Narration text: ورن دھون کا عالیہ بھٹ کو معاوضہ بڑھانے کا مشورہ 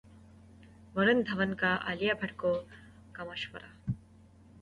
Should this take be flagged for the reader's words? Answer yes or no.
yes